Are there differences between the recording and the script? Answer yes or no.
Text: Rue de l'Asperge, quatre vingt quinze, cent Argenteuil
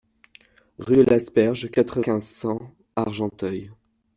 yes